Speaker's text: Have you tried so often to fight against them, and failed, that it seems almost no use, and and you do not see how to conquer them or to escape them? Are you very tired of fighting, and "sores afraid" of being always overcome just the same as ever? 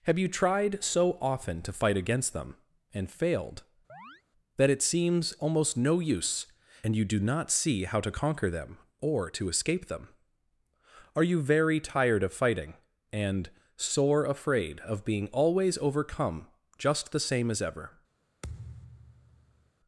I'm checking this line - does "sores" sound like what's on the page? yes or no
no